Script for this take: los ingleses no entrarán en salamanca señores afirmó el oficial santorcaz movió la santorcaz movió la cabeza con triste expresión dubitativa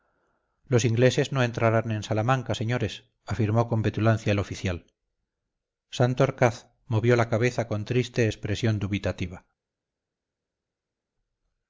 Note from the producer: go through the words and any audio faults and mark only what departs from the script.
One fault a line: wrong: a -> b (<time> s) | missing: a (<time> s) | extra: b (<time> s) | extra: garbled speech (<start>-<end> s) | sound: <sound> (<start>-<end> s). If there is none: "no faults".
extra: con petulancia (3.7 s)
missing: santorcaz movió la (7.3 s)